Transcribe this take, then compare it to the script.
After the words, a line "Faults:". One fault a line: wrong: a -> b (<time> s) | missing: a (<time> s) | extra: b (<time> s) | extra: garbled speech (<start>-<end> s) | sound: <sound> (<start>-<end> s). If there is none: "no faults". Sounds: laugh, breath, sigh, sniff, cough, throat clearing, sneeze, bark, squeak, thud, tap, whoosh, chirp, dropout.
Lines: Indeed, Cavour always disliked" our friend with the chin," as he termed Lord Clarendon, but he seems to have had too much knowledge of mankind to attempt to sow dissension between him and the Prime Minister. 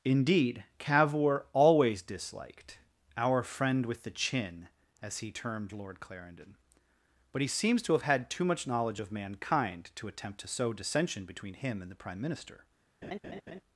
Indeed, Cavour always disliked" our friend with the chin," as he termed Lord Clarendon, but he seems to have had too much knowledge of mankind to attempt to sow dissension between him and the Prime Minister.
Faults:
sound: laugh (13.0-13.6 s)